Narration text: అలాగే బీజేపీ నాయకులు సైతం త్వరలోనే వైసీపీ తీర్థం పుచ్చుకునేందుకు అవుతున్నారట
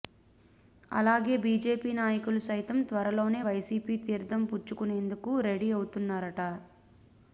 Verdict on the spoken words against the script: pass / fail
fail